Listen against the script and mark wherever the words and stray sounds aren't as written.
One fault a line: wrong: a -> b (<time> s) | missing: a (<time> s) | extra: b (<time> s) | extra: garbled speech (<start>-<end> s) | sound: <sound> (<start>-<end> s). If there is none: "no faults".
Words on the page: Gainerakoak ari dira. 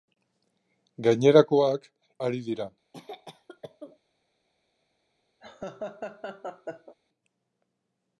sound: cough (2.9-4.0 s)
sound: laugh (5.4-6.9 s)